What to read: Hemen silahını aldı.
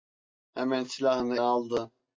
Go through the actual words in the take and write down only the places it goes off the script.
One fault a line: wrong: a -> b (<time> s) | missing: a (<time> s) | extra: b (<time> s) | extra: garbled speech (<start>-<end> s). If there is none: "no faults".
no faults